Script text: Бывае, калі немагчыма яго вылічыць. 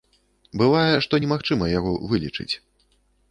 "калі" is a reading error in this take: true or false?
true